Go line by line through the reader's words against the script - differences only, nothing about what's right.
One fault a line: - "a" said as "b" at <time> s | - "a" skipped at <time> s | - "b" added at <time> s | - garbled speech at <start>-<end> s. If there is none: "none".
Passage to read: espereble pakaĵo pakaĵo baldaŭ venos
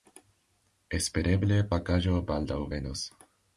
- "pakaĵo" skipped at 2.2 s